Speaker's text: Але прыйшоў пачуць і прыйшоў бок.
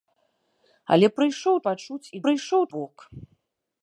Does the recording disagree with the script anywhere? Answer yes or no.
no